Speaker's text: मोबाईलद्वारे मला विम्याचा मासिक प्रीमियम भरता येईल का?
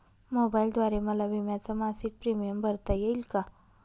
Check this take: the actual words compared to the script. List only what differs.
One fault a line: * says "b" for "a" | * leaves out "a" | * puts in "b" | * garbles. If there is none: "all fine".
all fine